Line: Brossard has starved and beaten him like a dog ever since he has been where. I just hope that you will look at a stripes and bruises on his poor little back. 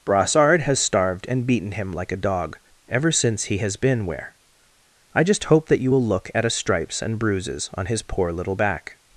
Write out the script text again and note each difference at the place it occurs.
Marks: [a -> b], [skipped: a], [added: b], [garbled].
Brossard has starved and beaten him like a dog ever since he has been where. I just hope that you will look at a stripes and bruises on his poor little back.